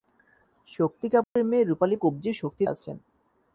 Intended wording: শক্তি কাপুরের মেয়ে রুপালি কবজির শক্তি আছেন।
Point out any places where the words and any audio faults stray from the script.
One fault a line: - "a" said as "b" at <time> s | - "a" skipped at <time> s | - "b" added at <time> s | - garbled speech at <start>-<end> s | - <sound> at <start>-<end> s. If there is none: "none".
- dropout at 1.2-1.4 s